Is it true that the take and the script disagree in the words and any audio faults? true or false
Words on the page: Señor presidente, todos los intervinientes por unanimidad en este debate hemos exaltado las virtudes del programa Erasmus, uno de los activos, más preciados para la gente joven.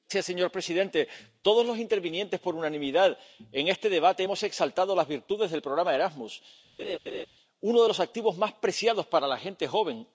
true